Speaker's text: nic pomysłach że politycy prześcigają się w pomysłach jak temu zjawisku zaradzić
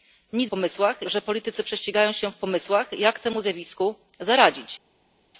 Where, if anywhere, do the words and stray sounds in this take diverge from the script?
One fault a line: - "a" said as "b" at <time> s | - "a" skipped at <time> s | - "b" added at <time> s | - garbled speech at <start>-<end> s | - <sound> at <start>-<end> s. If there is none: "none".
none